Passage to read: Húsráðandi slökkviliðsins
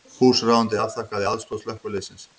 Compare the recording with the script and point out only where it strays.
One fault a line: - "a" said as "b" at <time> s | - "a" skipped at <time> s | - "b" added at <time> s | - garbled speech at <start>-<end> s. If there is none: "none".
- "afþakkaði aðstoð" added at 0.8 s